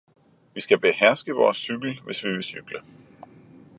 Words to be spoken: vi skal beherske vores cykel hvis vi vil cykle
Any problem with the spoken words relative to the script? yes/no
no